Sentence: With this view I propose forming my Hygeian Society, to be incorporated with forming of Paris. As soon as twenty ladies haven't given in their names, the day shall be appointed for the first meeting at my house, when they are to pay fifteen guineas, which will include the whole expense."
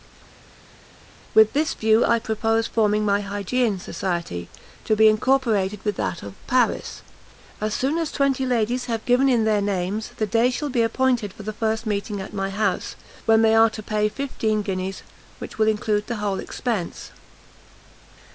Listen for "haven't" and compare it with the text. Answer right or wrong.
wrong